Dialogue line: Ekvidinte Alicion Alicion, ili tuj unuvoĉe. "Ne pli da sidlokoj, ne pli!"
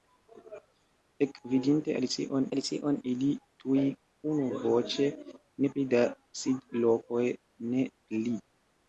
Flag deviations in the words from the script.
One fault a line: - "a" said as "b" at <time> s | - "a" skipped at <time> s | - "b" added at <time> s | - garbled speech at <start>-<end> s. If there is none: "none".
none